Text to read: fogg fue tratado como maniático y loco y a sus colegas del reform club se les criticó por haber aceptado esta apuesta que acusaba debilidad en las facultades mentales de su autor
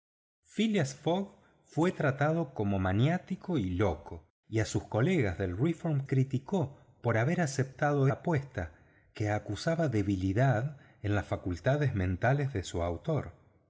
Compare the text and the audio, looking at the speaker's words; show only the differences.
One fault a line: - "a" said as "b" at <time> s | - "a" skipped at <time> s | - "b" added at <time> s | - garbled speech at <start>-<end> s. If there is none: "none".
- "club se les" skipped at 6.0 s
- "esta" skipped at 8.1 s